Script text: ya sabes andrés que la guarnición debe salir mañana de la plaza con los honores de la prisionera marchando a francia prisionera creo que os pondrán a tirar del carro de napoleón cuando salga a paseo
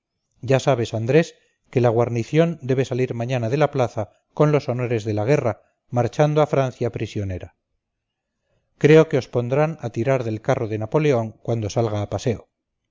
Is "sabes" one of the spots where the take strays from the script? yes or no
no